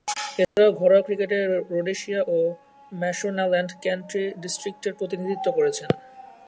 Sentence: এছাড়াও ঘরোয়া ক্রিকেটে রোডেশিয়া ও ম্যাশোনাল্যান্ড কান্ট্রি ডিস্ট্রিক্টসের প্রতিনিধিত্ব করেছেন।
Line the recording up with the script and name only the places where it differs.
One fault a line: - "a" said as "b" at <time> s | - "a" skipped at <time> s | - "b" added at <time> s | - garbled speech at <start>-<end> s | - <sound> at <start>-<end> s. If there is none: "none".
- dropout at 0.4-0.6 s